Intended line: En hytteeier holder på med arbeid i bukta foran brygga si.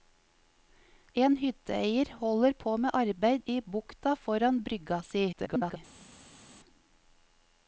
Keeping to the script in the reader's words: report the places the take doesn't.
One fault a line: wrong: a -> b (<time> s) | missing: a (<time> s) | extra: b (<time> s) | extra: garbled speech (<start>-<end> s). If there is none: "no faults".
extra: garbled speech (5.3-5.8 s)